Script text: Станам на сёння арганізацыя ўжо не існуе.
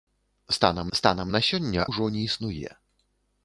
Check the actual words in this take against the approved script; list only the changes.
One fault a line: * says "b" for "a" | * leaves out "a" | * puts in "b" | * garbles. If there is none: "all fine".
* puts in "станам"
* leaves out "арганізацыя"